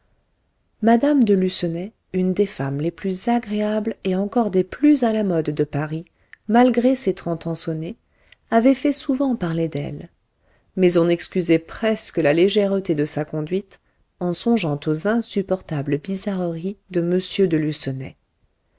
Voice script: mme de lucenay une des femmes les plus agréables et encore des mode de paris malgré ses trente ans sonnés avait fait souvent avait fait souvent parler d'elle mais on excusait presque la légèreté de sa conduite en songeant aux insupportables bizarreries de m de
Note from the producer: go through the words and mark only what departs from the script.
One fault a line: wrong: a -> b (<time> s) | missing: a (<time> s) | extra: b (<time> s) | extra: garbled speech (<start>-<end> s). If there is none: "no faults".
extra: plus à la (4.6 s)
missing: avait fait souvent (9.3 s)